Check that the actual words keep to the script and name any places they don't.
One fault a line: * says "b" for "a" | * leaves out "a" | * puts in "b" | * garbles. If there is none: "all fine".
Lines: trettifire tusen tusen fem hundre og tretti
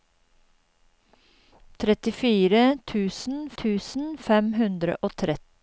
all fine